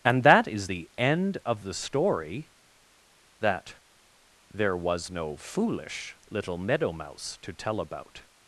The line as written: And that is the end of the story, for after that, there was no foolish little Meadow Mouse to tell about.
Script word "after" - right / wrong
wrong